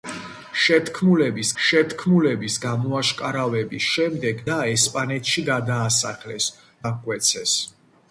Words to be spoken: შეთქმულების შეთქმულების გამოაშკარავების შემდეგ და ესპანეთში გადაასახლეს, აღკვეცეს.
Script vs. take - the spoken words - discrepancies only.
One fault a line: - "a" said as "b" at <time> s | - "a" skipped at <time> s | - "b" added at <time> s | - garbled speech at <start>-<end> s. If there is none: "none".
none